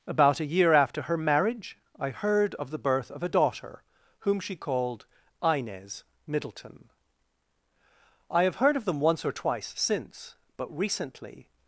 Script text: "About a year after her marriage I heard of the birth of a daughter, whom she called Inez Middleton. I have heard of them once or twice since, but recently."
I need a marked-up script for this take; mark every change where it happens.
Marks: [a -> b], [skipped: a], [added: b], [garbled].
"About a year after her marriage I heard of the birth of a daughter, whom she called Inez Middleton. I have heard of them once or twice since, but recently."